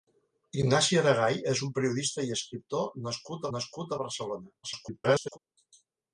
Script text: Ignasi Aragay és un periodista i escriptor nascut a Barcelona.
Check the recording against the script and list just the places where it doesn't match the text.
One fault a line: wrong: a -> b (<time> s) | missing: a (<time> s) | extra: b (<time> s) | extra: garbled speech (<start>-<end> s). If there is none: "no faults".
extra: nascut (3.6 s)
extra: garbled speech (4.6-5.4 s)